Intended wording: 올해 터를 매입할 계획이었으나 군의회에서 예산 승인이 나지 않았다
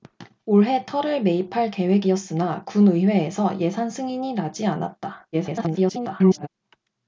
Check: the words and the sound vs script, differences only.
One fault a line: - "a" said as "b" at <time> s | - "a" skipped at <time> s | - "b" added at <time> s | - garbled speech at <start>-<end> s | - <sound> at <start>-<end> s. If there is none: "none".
- garbled speech at 5.3-6.5 s